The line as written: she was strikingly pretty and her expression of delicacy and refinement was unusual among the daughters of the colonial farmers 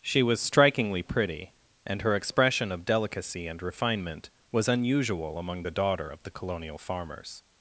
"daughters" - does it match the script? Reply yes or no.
no